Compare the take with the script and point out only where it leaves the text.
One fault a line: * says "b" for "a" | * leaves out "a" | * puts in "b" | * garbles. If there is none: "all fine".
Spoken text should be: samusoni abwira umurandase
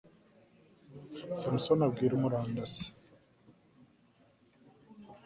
all fine